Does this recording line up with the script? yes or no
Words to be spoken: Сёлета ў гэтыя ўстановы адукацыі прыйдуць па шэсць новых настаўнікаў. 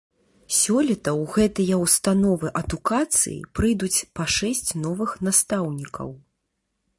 yes